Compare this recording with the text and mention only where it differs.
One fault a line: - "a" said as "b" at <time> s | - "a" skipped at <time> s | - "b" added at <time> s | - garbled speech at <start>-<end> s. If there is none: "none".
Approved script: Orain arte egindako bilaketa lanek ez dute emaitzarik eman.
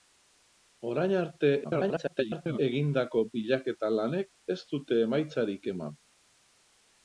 - garbled speech at 1.6-2.6 s